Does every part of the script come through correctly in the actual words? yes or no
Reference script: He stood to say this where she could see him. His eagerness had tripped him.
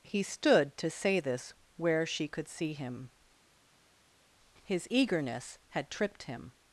yes